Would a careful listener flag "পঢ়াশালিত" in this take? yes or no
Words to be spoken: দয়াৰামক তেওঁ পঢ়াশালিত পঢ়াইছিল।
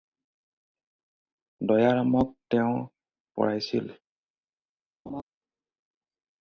yes